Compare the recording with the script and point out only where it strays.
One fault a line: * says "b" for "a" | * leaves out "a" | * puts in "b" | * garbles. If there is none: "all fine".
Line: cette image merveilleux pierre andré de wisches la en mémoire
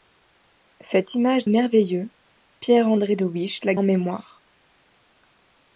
all fine